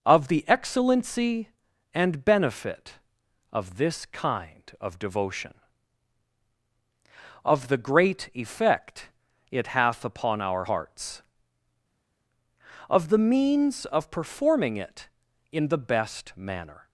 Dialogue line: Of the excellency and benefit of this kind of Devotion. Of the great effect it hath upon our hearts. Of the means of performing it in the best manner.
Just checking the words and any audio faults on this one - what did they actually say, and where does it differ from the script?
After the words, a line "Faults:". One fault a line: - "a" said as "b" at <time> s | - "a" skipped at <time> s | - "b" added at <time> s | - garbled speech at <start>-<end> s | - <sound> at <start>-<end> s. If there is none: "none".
Of the excellency and benefit of this kind of Devotion. Of the great effect it hath upon our hearts. Of the means of performing it in the best manner.
Faults:
none